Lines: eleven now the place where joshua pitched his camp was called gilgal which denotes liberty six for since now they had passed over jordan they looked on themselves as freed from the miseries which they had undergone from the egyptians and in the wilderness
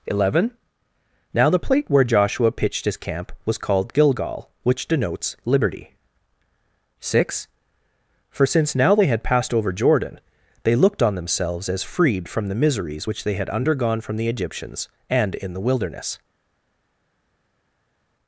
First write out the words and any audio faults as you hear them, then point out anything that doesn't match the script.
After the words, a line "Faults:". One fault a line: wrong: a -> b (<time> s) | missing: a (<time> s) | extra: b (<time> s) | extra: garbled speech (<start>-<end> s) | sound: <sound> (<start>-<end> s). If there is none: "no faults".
eleven now the plate where joshua pitched his camp was called gilgal which denotes liberty six for since now they had passed over jordan they looked on themselves as freed from the miseries which they had undergone from the egyptians and in the wilderness
Faults:
wrong: place -> plate (1.6 s)